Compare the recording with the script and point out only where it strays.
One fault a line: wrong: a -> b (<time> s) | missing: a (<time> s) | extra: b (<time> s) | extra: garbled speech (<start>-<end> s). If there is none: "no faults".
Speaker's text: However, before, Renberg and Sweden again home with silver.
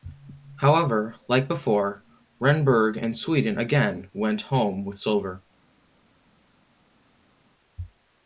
extra: like (1.3 s)
extra: went (4.1 s)